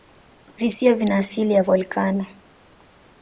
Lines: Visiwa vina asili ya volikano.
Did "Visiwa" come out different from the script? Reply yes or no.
no